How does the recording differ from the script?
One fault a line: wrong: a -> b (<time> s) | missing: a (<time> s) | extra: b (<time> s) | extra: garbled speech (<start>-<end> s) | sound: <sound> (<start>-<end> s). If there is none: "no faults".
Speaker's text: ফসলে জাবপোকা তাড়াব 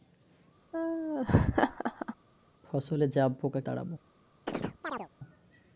sound: laugh (0.7-2.2 s)
sound: chirp (4.5-5.1 s)